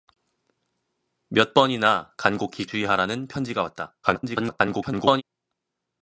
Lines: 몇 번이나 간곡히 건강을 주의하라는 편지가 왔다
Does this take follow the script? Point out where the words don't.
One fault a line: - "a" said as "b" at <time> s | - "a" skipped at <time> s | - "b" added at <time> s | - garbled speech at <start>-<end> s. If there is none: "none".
- "건강을" skipped at 2.6 s
- garbled speech at 4.0-5.2 s